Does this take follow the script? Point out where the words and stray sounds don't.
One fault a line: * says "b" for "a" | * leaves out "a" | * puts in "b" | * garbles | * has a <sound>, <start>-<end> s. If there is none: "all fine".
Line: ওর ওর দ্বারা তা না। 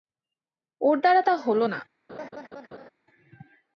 * leaves out "ওর"
* puts in "হল"
* has a laugh, 2.1-2.9 s